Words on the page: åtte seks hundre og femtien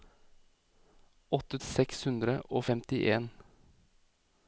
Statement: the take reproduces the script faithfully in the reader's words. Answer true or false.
true